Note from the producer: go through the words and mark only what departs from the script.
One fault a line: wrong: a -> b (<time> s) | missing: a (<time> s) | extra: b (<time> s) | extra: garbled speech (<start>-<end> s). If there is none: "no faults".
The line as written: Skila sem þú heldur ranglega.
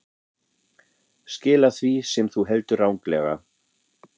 extra: því (1.8 s)